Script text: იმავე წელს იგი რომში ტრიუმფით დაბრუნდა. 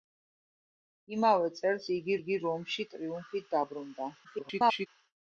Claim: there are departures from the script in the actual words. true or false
true